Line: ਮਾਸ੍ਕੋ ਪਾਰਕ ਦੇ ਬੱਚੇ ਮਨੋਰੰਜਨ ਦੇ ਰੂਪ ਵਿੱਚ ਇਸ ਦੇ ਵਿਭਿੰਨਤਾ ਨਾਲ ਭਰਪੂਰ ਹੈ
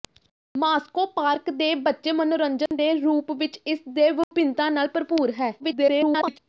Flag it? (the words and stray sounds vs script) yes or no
yes